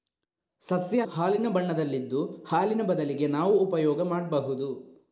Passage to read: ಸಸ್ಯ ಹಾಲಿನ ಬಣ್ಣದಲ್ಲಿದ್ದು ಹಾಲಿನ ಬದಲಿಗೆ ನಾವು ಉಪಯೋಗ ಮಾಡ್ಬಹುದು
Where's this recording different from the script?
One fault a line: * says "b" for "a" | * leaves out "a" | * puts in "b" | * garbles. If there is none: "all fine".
all fine